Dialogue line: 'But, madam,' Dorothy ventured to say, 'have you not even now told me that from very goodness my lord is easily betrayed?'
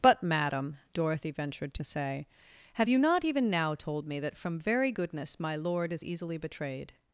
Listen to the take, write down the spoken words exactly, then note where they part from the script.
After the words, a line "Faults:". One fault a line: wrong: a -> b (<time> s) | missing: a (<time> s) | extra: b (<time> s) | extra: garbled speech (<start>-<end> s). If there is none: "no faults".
'But, madam,' Dorothy ventured to say, 'have you not even now told me that from very goodness my lord is easily betrayed?'
Faults:
no faults